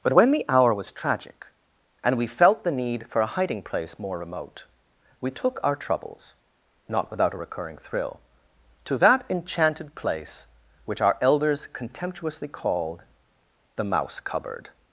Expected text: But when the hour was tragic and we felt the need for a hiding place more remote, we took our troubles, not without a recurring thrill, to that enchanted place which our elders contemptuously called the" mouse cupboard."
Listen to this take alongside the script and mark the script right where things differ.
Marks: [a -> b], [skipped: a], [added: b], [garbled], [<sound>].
But when the hour was tragic and we felt the need for a hiding place more remote, we took our troubles, not without a recurring thrill, to that enchanted place which our elders contemptuously called the" mouse cupboard."